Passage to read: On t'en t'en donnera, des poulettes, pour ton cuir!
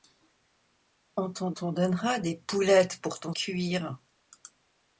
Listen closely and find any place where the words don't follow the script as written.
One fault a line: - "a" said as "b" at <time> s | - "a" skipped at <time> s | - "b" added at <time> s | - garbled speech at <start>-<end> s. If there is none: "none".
none